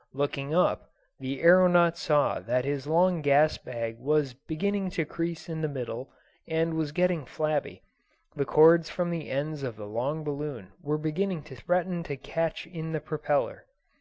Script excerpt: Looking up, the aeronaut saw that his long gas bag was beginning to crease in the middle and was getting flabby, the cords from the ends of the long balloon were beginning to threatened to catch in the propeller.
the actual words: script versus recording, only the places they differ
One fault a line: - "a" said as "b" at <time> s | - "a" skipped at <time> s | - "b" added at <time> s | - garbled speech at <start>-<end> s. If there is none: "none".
none